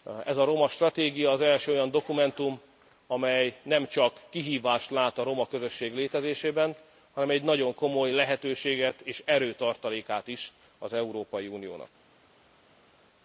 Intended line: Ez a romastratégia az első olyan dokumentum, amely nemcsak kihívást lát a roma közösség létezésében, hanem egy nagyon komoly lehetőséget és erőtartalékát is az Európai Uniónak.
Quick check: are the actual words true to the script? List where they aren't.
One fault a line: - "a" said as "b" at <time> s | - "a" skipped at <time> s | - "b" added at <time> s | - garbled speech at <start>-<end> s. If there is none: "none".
none